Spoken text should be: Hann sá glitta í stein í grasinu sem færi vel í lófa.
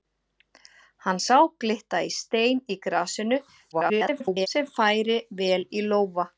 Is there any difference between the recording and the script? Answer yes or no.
yes